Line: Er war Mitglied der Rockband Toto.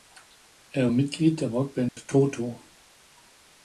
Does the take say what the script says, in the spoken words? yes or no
no